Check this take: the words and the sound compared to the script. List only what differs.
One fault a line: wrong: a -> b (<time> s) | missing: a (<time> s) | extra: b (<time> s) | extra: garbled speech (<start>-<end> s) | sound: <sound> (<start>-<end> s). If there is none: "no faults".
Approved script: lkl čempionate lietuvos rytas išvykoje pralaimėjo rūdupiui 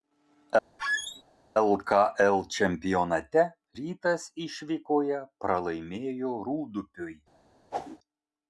sound: squeak (0.8-1.2 s)
missing: lietuvos (3.4 s)
sound: whoosh (7.7-8.0 s)